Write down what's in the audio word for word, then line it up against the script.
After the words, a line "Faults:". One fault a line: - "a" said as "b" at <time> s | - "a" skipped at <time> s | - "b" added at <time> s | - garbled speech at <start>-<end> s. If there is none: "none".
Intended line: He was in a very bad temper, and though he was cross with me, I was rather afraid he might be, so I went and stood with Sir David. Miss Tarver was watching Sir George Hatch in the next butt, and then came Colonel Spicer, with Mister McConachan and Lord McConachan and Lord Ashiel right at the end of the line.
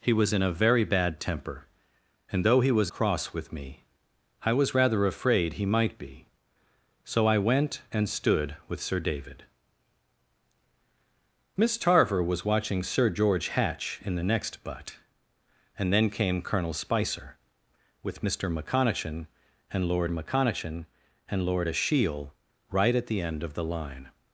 He was in a very bad temper, and though he was cross with me, I was rather afraid he might be, so I went and stood with Sir David. Miss Tarver was watching Sir George Hatch in the next butt, and then came Colonel Spicer, with Mister McConachan and Lord McConachan and Lord Ashiel right at the end of the line.
Faults:
none